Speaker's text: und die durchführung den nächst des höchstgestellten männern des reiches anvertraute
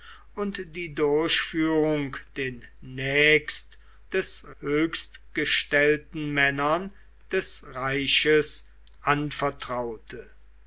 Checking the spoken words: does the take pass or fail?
pass